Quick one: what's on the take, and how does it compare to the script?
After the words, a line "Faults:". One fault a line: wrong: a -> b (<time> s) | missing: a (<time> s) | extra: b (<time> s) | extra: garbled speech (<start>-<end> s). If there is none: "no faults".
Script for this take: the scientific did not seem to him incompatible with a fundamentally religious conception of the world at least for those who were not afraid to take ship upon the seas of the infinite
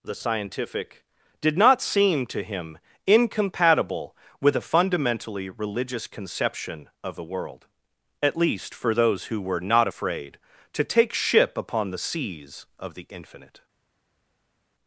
the scientific did not seem to him incompatible with a fundamentally religious conception of the world at least for those who were not afraid to take ship upon the seas of the infinite
Faults:
no faults